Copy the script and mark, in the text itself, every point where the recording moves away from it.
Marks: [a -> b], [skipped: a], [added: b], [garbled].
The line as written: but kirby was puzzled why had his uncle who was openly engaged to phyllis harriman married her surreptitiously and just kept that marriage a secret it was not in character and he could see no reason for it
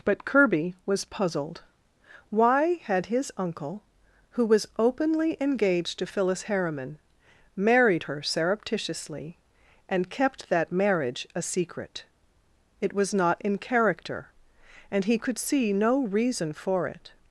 but kirby was puzzled why had his uncle who was openly engaged to phyllis harriman married her surreptitiously and [skipped: just] kept that marriage a secret it was not in character and he could see no reason for it